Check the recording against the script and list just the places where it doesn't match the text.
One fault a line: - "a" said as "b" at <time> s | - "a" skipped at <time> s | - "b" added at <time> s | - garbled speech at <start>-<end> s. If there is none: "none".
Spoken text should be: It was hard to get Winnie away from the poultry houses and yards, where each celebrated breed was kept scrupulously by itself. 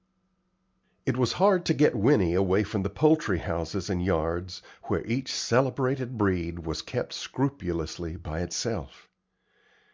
none